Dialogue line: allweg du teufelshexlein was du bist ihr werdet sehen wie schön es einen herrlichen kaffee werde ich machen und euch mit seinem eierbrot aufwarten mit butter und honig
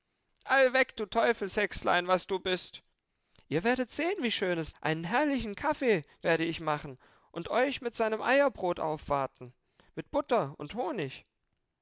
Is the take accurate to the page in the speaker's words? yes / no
yes